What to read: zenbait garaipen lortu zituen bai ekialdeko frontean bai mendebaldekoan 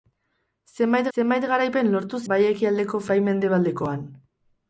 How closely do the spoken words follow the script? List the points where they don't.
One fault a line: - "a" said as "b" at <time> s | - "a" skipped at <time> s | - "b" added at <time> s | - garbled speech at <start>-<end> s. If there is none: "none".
- "zenbait" added at 1.1 s
- "zituen" skipped at 2.2 s
- "frontean" skipped at 3.0 s